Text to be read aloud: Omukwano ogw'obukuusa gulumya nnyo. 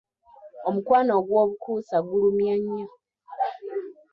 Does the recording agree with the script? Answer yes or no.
yes